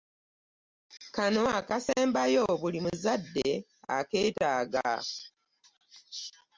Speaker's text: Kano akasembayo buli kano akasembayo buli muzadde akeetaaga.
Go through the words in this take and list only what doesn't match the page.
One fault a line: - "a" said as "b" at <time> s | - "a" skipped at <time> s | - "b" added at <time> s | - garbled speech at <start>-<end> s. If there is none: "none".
- "kano akasembayo buli" skipped at 2.8 s